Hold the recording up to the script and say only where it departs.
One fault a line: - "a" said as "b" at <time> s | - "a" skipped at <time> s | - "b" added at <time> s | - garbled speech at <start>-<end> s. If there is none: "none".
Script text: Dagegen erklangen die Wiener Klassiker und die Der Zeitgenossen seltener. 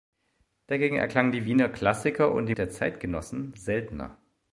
none